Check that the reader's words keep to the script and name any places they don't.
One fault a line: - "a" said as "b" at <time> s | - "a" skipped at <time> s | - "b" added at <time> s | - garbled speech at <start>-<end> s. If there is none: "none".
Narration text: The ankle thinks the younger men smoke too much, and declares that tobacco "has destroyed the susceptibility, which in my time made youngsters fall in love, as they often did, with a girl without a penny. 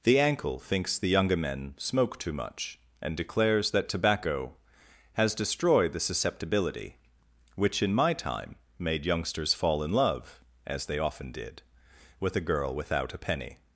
none